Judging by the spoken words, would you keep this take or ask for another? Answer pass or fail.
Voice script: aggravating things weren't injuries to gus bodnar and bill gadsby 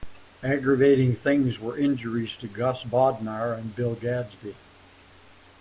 fail